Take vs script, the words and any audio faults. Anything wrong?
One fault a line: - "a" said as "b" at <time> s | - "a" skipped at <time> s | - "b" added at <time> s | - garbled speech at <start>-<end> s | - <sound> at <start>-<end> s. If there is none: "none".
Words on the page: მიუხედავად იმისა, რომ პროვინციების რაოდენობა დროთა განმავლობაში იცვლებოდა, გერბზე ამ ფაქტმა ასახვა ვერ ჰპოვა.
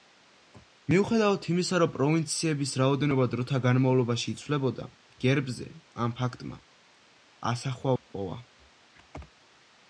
- "ვერ" skipped at 7.9 s